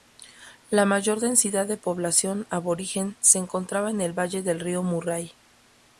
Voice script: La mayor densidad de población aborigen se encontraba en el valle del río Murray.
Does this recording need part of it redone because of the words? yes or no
no